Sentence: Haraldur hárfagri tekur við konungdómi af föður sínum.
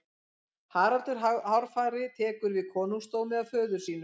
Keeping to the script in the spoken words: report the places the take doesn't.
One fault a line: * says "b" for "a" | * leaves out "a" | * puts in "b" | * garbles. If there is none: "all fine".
all fine